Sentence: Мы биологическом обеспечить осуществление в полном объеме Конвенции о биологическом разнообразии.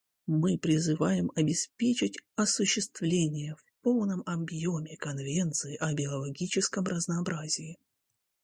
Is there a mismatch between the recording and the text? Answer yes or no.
yes